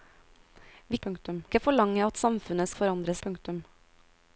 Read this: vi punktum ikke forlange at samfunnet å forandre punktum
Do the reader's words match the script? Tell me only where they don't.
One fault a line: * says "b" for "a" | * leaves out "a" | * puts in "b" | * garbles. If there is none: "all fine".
all fine